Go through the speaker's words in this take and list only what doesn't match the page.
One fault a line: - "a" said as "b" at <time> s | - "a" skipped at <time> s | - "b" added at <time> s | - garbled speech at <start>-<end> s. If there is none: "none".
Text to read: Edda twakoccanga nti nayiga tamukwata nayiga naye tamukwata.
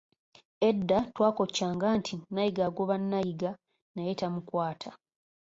- "tamukwata" said as "agoba" at 2.7 s